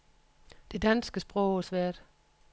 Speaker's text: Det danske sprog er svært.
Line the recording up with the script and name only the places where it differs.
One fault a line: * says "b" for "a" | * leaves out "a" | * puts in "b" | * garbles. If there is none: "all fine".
all fine